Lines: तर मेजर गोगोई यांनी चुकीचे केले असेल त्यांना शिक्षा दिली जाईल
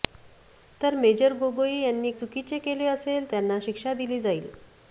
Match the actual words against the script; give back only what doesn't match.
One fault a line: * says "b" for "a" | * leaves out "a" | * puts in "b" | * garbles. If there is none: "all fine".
all fine